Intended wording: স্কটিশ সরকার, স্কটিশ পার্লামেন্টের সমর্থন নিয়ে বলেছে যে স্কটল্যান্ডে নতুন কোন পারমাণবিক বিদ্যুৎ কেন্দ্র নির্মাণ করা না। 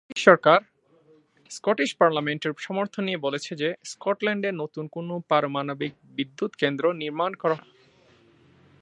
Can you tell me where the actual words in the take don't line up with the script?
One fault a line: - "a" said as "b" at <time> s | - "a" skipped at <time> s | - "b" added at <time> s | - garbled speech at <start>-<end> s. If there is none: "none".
none